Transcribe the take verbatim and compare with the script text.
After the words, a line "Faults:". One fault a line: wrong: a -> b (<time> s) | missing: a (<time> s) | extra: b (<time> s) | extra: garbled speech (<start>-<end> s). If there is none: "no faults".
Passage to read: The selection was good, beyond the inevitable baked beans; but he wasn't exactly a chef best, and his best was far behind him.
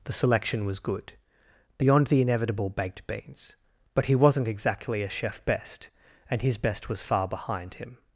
The selection was good, beyond the inevitable baked beans; but he wasn't exactly a chef best, and his best was far behind him.
Faults:
no faults